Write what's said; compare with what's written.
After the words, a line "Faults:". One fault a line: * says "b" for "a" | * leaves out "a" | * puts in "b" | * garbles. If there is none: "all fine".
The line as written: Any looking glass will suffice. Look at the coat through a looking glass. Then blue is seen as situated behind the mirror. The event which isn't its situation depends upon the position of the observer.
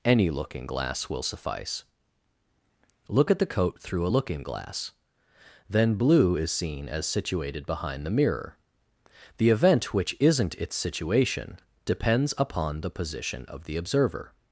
Any looking glass will suffice. Look at the coat through a looking glass. Then blue is seen as situated behind the mirror. The event which isn't its situation depends upon the position of the observer.
Faults:
all fine